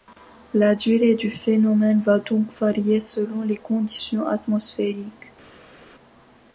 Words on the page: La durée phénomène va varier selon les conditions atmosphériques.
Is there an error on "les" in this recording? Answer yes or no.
no